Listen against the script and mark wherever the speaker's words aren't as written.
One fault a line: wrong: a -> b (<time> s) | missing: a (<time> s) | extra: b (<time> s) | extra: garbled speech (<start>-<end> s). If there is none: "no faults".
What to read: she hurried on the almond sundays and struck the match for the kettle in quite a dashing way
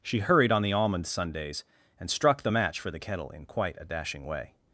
no faults